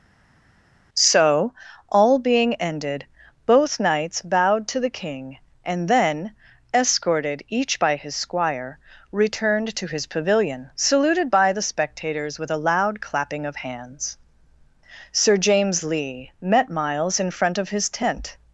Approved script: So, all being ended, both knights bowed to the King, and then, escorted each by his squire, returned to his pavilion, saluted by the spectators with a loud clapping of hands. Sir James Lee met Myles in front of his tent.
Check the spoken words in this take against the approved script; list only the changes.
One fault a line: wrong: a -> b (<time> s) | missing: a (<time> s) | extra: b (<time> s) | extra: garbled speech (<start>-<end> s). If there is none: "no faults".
no faults